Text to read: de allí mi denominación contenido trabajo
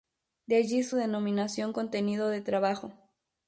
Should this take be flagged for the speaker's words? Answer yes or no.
yes